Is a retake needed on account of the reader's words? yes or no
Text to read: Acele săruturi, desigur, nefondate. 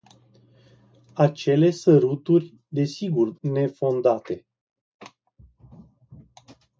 no